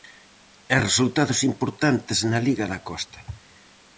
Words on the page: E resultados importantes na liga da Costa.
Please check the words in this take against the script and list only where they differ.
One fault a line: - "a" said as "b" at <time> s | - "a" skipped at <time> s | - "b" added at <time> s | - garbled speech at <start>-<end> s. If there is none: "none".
none